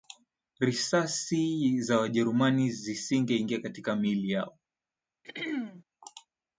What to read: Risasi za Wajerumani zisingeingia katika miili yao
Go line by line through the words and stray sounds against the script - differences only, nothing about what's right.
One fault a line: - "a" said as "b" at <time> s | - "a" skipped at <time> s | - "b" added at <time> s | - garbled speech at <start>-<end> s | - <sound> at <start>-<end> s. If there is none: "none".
- throat clearing at 5.2-5.8 s